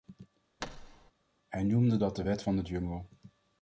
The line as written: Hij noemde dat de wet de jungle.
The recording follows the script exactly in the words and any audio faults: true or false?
false